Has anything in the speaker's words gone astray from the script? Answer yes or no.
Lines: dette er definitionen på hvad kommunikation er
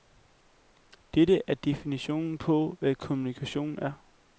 no